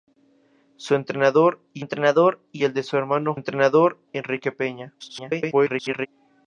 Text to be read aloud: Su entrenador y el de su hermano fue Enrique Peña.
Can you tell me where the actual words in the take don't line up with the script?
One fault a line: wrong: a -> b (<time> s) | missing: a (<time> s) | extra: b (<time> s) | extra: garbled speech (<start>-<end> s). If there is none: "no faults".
extra: entrenador y (1.8 s)
wrong: fue -> entrenador (3.3 s)
extra: garbled speech (5.0-6.1 s)